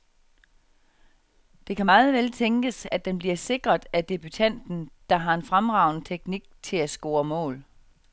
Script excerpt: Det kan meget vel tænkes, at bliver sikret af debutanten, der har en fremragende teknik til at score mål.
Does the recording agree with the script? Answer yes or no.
no